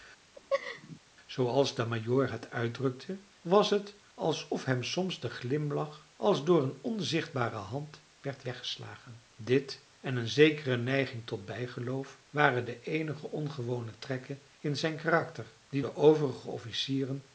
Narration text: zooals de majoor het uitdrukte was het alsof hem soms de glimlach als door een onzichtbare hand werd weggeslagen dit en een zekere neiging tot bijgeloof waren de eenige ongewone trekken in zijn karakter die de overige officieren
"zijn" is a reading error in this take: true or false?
false